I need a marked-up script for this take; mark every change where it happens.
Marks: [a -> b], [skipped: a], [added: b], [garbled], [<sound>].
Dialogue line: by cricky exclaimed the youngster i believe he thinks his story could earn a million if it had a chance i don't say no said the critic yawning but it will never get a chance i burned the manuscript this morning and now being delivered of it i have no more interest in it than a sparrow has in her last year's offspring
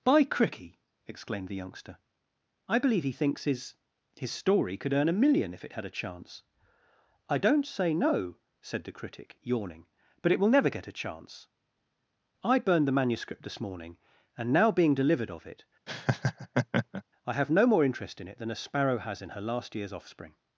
by cricky exclaimed the youngster i believe he thinks his [added: his] story could earn a million if it had a chance i don't say no said the critic yawning but it will never get a chance i burned the manuscript this morning and now being delivered of it [laugh] i have no more interest in it than a sparrow has in her last year's offspring